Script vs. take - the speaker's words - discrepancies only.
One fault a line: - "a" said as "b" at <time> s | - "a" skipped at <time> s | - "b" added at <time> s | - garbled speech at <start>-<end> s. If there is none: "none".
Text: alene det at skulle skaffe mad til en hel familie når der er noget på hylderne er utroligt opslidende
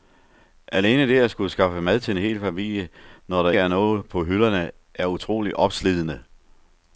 none